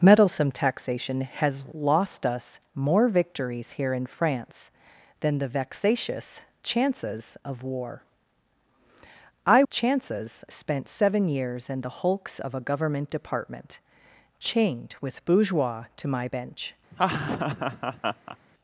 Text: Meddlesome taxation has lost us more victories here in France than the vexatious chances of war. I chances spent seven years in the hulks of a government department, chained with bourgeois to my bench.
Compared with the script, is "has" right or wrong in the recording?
right